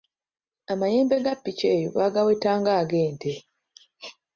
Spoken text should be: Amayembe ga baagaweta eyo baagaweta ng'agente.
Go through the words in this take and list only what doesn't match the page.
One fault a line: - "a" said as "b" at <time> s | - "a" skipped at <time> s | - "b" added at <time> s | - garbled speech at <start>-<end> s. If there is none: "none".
- "baagaweta" said as "ppiki" at 1.4 s